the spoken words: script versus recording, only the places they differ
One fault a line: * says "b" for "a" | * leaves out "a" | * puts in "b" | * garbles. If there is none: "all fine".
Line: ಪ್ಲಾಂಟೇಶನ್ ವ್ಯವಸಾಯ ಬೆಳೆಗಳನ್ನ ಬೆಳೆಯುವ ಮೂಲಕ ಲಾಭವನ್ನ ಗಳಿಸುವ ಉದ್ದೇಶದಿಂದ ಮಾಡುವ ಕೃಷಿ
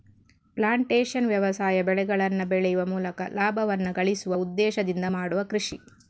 all fine